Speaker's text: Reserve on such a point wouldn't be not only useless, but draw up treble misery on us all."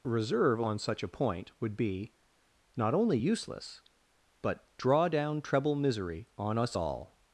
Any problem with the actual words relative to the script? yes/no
yes